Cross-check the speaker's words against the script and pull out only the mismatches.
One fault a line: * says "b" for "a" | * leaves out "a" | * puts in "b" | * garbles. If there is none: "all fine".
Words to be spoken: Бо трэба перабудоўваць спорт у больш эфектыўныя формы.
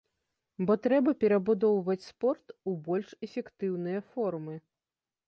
all fine